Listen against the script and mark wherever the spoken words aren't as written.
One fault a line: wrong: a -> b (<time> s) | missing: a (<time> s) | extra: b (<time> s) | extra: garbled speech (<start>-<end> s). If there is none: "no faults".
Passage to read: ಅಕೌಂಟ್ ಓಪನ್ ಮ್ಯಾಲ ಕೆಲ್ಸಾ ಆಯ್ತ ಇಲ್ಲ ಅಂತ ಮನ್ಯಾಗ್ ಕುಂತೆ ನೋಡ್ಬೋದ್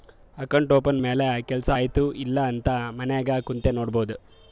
no faults